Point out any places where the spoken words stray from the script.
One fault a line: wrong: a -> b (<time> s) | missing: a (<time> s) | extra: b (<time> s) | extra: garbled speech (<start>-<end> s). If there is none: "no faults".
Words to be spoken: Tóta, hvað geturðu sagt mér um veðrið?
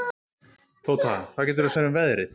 missing: sagt (1.7 s)